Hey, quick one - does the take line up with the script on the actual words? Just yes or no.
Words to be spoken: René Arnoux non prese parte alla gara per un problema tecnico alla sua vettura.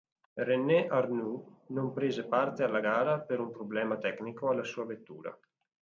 yes